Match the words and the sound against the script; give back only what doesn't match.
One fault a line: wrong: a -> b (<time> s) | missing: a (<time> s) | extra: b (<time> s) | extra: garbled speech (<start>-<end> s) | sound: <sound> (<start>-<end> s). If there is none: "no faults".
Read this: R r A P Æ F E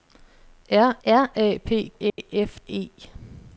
sound: dropout (2.1-2.2 s)